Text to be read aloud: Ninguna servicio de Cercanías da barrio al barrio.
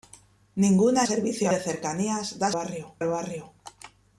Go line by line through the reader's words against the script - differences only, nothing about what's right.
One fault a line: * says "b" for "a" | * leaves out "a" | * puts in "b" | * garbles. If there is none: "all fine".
all fine